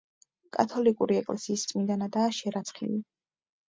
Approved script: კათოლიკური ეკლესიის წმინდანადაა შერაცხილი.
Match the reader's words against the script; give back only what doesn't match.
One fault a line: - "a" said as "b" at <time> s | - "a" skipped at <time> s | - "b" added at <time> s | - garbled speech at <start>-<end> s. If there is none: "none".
none